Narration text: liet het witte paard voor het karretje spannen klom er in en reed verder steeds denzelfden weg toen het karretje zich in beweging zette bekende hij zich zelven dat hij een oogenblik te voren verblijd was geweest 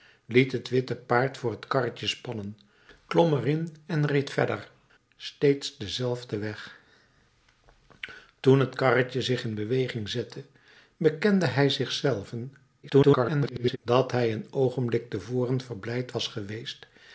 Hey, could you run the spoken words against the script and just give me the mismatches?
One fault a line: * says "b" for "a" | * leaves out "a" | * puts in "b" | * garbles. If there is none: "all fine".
* garbles